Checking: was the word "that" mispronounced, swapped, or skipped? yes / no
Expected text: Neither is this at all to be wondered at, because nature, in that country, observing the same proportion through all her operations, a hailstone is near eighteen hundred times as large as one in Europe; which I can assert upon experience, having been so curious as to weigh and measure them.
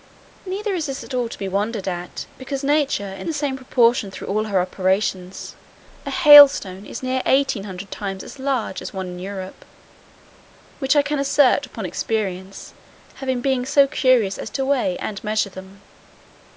yes